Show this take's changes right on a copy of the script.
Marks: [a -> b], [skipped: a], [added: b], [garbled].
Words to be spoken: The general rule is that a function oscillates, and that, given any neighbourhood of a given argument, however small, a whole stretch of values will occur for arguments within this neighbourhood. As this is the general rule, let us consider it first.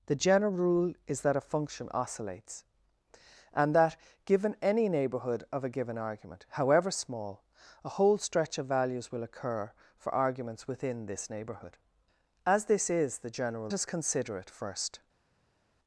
The general rule is that a function oscillates, and that, given any neighbourhood of a given argument, however small, a whole stretch of values will occur for arguments within this neighbourhood. As this is the general [skipped: rule, let] us consider it first.